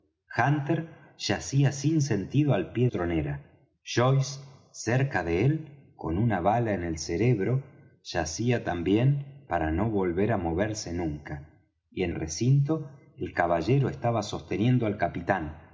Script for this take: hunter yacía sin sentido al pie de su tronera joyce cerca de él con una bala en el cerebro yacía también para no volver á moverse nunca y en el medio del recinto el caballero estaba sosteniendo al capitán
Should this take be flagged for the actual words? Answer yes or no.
yes